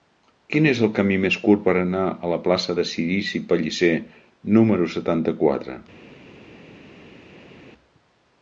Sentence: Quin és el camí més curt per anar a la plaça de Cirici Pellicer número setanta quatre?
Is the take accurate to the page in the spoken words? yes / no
yes